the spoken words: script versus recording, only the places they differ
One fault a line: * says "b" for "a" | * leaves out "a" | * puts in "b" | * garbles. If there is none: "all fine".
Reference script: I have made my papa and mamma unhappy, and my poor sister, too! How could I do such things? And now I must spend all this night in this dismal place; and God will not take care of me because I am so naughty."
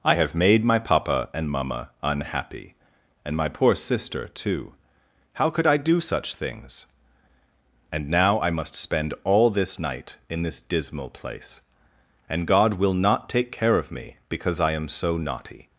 all fine